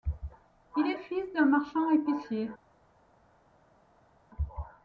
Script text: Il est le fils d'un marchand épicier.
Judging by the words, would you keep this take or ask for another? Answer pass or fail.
fail